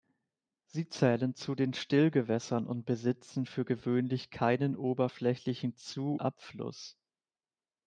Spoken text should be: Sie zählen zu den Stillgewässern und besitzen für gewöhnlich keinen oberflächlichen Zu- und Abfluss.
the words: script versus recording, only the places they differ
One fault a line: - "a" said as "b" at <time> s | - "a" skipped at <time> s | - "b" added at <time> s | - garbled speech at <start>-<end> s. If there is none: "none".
- "und" skipped at 6.2 s